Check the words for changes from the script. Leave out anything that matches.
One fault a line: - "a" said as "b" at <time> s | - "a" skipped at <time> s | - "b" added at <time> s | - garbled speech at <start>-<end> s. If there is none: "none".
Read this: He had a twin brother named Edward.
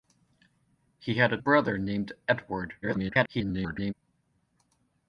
- "twin" skipped at 1.4 s
- garbled speech at 2.8-3.9 s